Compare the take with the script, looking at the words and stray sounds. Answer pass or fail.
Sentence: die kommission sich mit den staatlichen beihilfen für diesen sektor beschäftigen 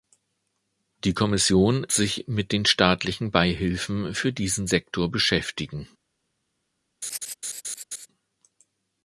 fail